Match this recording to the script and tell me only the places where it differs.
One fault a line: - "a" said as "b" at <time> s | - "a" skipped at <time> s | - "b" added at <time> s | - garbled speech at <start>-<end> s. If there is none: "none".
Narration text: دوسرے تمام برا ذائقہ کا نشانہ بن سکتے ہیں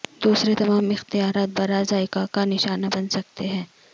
- "اختیارات" added at 0.9 s